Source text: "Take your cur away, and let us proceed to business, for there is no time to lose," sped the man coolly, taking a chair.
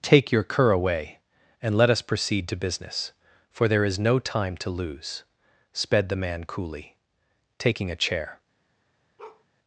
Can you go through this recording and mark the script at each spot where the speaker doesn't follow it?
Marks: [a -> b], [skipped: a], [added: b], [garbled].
"Take your cur away, and let us proceed to business, for there is no time to lose," sped the man coolly, taking a chair.